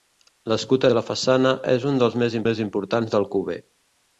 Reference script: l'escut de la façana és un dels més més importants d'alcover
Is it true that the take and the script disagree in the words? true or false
false